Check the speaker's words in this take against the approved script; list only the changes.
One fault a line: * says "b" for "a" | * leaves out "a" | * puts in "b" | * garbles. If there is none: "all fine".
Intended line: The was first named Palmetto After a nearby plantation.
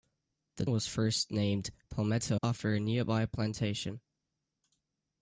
all fine